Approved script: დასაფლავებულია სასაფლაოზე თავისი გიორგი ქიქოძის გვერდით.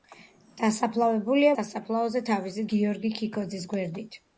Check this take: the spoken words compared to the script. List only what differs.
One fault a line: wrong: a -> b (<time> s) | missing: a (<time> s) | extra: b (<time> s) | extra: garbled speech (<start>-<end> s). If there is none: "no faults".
no faults